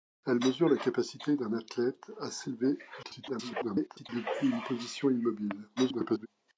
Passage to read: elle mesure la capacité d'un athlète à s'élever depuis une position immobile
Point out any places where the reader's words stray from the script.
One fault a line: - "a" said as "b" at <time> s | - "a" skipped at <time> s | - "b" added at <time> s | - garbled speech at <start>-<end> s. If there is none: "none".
- garbled speech at 3.0-4.1 s
- garbled speech at 5.8-6.3 s